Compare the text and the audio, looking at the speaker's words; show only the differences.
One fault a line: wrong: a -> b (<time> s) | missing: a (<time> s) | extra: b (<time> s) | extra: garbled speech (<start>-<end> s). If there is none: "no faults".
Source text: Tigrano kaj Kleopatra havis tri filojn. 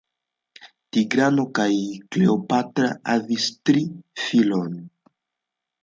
no faults